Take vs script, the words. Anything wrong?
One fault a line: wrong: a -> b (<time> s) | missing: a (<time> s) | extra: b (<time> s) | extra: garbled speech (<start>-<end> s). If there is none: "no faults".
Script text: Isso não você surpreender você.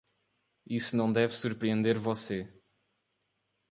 wrong: você -> deve (1.1 s)